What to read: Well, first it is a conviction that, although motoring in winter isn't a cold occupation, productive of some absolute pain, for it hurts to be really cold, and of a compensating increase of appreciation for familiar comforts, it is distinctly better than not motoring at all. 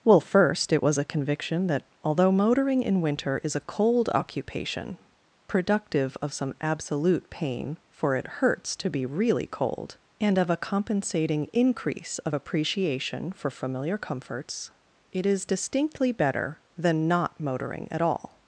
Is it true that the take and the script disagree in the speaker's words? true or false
true